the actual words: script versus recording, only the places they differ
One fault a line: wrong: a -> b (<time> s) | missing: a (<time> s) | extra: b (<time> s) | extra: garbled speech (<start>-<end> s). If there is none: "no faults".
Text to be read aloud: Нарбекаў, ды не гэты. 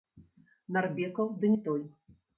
wrong: гэты -> той (1.7 s)